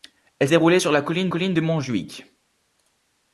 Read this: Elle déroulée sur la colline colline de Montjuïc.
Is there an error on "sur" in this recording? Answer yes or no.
no